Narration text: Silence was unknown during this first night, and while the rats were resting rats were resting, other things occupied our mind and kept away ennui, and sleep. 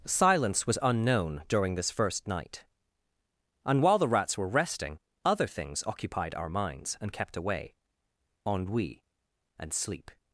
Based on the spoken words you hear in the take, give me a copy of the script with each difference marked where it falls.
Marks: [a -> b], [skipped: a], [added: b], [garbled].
Silence was unknown during this first night, and while the rats were resting [skipped: rats were resting,] other things occupied our [mind -> minds] and kept away ennui, and sleep.